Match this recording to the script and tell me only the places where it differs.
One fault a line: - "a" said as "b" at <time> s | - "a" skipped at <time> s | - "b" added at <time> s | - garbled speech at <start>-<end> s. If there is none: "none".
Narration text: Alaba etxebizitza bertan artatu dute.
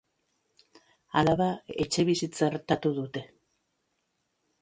- "bertan" skipped at 2.5 s